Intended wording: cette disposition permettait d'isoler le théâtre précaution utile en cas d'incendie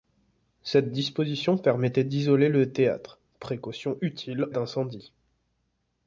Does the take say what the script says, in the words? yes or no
no